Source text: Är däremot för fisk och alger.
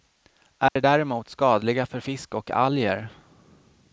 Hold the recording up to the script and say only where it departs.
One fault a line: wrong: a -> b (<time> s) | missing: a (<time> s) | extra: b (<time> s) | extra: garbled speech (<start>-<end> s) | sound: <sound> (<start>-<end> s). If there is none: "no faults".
sound: dropout (0.7-0.8 s)
extra: skadliga (1.3 s)